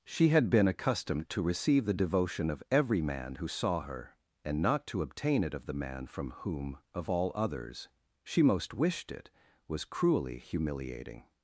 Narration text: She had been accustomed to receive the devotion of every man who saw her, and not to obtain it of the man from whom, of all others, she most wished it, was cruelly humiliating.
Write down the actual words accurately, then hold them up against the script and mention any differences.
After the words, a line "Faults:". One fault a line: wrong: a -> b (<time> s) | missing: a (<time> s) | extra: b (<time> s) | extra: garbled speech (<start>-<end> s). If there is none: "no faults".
She had been accustomed to receive the devotion of every man who saw her, and not to obtain it of the man from whom, of all others, she most wished it, was cruelly humiliating.
Faults:
no faults